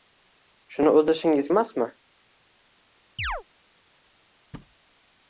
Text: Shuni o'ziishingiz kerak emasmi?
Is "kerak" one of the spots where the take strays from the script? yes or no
yes